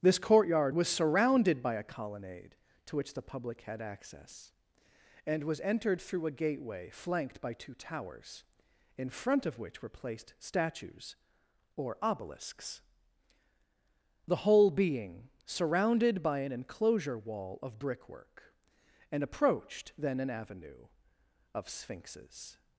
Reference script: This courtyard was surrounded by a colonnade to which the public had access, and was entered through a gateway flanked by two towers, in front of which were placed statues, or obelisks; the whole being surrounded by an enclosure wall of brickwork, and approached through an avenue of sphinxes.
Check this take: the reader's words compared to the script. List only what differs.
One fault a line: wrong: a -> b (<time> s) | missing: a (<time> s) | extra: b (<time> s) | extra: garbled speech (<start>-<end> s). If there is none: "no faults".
wrong: through -> then (20.0 s)